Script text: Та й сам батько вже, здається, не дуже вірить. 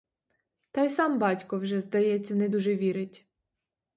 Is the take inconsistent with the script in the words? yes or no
no